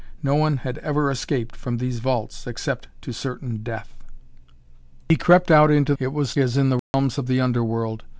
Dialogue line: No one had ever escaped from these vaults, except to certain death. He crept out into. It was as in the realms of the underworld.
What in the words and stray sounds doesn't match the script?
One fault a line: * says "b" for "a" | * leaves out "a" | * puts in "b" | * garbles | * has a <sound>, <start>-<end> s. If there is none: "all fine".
* has a dropout, 6.8-6.9 s